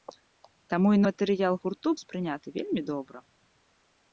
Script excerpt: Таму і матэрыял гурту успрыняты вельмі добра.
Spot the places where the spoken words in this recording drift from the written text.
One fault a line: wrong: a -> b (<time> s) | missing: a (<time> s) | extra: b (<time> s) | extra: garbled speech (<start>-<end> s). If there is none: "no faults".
no faults